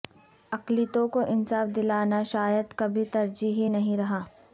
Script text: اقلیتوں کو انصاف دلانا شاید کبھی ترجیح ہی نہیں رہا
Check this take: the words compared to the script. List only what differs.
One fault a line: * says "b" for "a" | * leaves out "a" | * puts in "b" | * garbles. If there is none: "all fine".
all fine